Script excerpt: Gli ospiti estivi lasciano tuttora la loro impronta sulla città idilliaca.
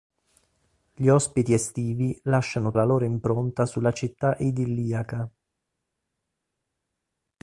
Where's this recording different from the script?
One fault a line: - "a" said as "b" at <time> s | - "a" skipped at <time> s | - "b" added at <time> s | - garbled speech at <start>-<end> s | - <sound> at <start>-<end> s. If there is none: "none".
- "tuttora" skipped at 2.7 s